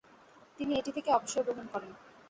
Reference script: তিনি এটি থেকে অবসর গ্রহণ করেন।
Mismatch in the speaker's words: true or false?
false